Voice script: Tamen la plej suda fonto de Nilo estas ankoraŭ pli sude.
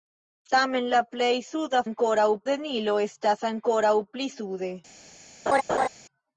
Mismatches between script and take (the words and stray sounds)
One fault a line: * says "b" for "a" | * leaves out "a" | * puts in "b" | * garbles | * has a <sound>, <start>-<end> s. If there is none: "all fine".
* says "ankoraŭ" for "fonto"
* has a laugh, 5.5-5.9 s